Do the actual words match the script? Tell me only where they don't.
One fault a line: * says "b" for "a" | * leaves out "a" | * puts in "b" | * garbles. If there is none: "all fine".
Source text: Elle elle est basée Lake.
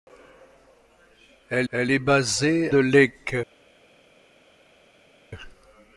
all fine